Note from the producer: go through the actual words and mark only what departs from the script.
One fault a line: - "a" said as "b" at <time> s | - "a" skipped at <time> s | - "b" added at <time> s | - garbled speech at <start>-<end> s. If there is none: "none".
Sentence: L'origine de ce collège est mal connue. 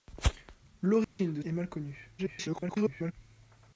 - "ce collège" skipped at 1.4 s
- garbled speech at 2.2-3.1 s